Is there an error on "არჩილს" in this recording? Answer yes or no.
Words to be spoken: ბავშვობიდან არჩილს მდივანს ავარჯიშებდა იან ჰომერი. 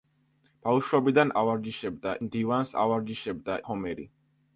yes